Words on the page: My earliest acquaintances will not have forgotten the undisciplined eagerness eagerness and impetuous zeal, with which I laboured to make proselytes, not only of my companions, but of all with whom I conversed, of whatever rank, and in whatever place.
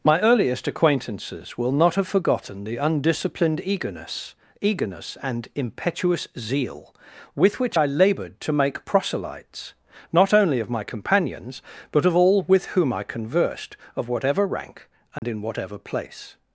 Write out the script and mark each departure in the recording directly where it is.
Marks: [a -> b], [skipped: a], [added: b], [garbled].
My earliest acquaintances will not have forgotten the undisciplined eagerness eagerness and impetuous zeal, with which I laboured to make proselytes, not only of my companions, but of all with whom I conversed, of whatever rank, and in whatever place.